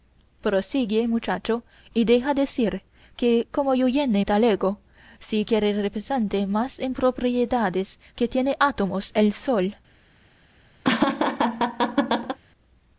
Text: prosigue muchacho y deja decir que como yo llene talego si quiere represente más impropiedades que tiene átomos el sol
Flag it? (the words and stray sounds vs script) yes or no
yes